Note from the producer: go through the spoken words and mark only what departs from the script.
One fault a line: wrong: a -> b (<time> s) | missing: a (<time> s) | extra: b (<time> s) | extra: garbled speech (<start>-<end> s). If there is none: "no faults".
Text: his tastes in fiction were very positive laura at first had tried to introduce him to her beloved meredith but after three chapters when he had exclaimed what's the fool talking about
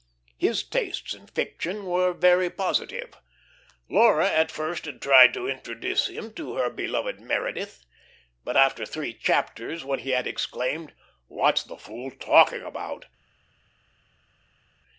no faults